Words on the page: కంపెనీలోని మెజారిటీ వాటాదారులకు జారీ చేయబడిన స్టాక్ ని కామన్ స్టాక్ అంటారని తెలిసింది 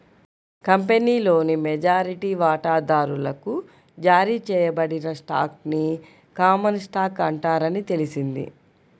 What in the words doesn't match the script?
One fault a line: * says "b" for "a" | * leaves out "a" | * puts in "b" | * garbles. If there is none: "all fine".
all fine